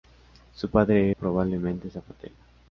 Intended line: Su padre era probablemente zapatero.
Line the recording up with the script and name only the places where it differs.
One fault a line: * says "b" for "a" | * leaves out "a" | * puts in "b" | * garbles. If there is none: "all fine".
* leaves out "era"